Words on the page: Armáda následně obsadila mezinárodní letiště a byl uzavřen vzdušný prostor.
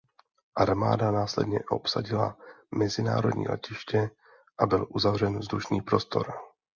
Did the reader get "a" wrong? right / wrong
right